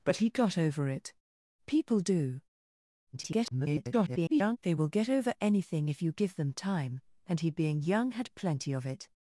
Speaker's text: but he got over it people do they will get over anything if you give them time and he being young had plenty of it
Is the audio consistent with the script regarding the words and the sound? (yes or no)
no